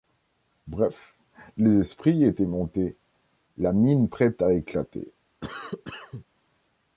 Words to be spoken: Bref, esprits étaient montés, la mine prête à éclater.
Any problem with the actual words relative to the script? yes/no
yes